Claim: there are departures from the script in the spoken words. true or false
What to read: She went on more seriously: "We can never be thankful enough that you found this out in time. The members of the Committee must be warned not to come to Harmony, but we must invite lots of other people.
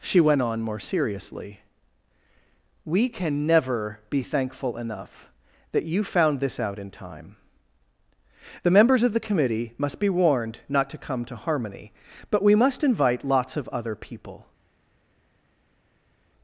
false